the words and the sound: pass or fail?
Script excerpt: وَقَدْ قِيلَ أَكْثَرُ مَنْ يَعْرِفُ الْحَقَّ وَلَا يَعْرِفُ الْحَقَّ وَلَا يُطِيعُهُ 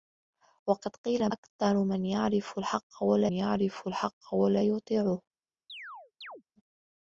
fail